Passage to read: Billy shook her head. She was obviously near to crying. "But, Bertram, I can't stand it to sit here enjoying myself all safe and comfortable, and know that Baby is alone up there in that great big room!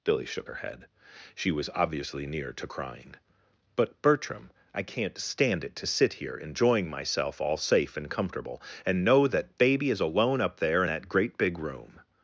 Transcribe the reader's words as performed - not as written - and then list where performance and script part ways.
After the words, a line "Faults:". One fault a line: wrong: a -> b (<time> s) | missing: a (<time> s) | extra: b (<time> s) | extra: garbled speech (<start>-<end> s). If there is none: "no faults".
Billy shook her head. She was obviously near to crying. "But, Bertram, I can't stand it to sit here enjoying myself all safe and comfortable, and know that Baby is alone up there that great big room!
Faults:
missing: in (10.8 s)